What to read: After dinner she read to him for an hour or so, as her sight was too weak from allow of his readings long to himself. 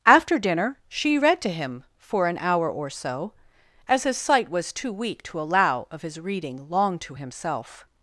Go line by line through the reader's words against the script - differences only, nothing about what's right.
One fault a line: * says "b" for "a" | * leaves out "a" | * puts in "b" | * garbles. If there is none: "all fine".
* says "his" for "her"
* says "to" for "from"
* says "reading" for "readings"